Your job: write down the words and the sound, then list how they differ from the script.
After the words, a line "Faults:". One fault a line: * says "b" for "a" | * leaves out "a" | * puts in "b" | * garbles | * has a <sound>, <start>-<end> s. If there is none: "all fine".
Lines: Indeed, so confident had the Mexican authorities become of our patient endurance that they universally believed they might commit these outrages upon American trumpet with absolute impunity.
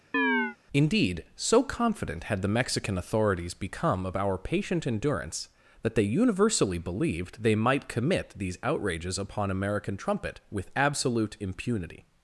Indeed, so confident had the Mexican authorities become of our patient endurance that they universally believed they might commit these outrages upon American trumpet with absolute impunity.
Faults:
* has a chirp, 0.1-0.6 s